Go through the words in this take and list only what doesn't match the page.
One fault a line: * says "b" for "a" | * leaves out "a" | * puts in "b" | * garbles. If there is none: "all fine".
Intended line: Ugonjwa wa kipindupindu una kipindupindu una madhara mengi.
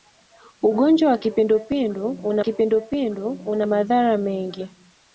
all fine